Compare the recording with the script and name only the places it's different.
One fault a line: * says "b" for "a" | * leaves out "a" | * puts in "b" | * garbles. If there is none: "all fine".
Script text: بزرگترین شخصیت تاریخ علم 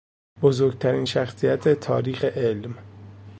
all fine